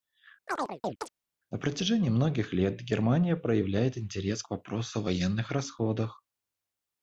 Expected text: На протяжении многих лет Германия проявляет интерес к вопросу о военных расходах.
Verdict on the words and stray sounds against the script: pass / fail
fail